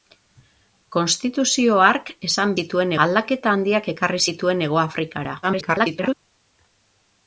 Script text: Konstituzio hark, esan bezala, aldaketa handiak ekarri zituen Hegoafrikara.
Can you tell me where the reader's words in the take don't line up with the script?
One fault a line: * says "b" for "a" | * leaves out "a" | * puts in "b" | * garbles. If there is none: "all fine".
* says "zituen" for "bezala"
* garbles